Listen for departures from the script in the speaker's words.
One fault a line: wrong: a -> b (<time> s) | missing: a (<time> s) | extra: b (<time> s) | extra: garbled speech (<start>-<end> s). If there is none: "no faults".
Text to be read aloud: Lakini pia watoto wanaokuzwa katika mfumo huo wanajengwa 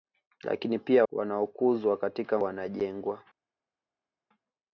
missing: watoto (1.1 s)
missing: mfumo huo (2.4 s)